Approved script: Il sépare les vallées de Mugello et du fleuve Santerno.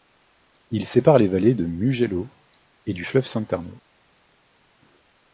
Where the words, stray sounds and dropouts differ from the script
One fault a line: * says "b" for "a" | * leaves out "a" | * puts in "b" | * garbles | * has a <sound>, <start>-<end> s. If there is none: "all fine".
all fine